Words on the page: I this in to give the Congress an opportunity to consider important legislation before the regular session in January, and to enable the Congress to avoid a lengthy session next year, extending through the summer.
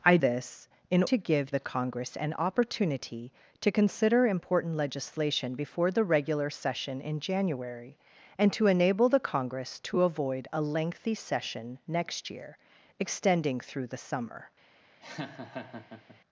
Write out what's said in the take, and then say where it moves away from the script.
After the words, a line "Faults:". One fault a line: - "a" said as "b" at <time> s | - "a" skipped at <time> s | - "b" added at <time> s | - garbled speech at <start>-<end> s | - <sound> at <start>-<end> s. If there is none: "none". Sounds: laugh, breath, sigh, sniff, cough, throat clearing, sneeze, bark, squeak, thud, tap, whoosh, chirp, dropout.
I this in to give the Congress an opportunity to consider important legislation before the regular session in January, and to enable the Congress to avoid a lengthy session next year, extending through the summer.
Faults:
- laugh at 15.0-16.2 s